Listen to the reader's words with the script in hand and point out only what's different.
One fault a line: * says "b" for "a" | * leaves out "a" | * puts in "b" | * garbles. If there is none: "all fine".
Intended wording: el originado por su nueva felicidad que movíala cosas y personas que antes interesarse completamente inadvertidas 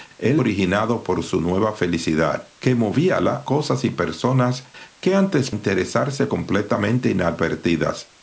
all fine